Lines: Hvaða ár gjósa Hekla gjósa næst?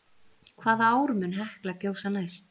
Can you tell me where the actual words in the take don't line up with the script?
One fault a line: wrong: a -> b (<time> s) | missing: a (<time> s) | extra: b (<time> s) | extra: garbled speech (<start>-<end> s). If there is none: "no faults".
wrong: gjósa -> mun (1.2 s)